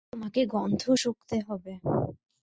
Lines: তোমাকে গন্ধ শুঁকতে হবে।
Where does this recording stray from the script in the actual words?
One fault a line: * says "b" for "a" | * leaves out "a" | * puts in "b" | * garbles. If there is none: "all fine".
all fine